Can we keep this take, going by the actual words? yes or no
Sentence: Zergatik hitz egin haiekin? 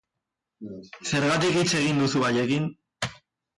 no